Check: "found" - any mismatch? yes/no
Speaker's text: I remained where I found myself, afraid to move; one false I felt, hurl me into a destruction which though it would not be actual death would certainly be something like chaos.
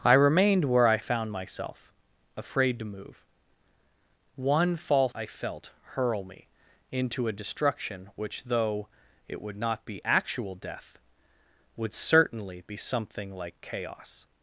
no